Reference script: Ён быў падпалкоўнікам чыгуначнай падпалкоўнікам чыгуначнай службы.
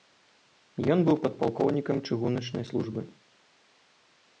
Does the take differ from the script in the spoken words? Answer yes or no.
yes